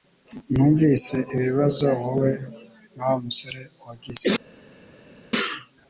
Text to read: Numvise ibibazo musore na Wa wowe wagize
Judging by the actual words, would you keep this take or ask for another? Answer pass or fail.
fail